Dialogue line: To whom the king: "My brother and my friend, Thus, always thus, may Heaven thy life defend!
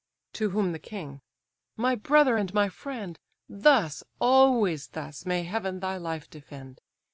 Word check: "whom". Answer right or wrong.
right